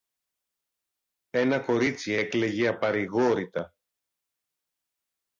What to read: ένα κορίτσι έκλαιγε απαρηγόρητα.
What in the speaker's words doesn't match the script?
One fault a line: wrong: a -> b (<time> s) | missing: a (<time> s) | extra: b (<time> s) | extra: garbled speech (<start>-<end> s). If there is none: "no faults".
no faults